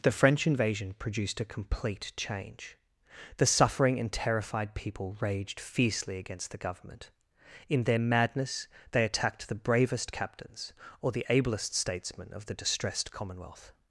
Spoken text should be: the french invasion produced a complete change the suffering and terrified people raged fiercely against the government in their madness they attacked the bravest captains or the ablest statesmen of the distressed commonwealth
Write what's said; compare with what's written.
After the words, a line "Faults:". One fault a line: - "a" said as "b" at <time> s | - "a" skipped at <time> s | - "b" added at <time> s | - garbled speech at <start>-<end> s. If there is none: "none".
the french invasion produced a complete change the suffering and terrified people raged fiercely against the government in their madness they attacked the bravest captains or the ablest statesmen of the distressed commonwealth
Faults:
none